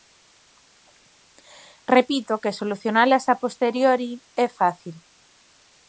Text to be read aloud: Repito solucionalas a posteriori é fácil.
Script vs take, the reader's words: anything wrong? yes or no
yes